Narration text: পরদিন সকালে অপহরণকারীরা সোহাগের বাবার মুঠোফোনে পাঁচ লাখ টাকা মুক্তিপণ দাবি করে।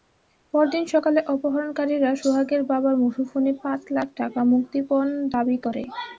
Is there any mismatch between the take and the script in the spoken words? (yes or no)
no